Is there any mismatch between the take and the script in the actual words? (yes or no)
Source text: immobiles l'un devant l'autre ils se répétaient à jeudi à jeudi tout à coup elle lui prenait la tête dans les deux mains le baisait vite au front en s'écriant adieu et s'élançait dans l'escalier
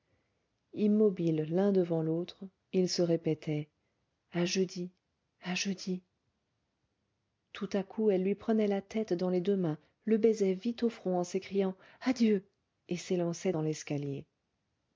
no